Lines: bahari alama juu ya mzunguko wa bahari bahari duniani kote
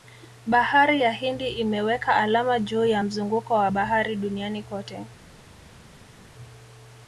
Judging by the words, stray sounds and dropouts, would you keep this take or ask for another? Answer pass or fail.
fail